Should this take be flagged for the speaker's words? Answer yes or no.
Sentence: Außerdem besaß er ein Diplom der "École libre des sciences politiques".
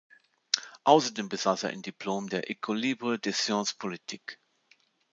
no